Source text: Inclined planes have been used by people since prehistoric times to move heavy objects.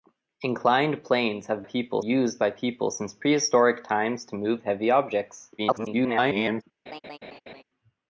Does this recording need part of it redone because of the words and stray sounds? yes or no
yes